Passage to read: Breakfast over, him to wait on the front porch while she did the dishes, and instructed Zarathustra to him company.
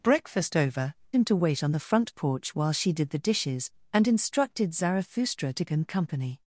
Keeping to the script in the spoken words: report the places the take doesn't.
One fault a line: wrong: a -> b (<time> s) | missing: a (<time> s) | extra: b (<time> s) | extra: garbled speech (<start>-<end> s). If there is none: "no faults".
no faults